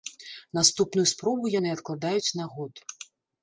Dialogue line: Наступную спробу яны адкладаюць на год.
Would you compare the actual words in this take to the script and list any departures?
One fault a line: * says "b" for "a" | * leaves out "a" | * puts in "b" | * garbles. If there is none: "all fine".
all fine